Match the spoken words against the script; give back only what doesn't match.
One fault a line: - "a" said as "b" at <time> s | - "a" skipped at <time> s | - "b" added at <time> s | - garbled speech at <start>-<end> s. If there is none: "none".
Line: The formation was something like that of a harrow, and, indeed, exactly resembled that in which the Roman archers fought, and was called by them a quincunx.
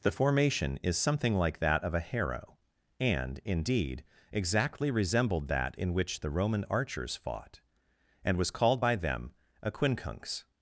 - "was" said as "is" at 0.8 s